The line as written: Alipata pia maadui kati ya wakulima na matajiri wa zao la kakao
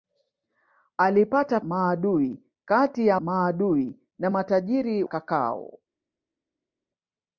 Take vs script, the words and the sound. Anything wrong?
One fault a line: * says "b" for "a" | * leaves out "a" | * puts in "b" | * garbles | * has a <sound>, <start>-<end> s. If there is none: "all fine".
* leaves out "pia"
* says "maadui" for "wakulima"
* leaves out "wa zao la"